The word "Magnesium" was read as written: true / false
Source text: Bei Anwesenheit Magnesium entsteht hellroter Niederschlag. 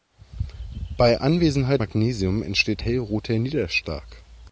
true